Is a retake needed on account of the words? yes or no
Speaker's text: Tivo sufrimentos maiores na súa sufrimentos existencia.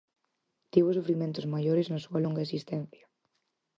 yes